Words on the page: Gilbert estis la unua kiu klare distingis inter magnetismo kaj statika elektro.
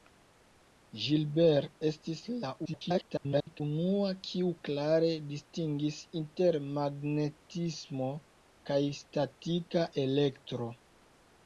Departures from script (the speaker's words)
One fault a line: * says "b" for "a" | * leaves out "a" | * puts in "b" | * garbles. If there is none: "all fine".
* garbles